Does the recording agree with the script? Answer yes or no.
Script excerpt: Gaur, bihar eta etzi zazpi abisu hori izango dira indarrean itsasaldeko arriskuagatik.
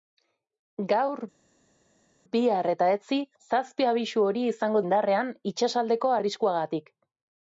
no